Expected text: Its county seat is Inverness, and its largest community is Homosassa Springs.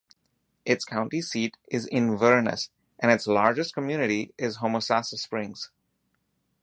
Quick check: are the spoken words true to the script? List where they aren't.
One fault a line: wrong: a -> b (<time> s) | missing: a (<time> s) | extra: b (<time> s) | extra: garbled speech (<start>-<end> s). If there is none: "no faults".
no faults